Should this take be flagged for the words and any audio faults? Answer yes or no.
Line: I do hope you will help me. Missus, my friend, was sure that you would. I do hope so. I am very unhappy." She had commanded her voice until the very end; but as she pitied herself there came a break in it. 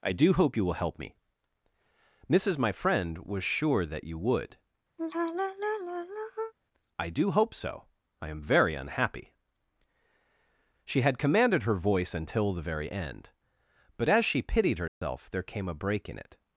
yes